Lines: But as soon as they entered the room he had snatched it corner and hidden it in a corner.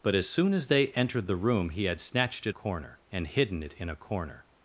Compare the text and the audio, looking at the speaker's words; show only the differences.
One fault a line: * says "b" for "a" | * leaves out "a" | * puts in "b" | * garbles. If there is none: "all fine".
all fine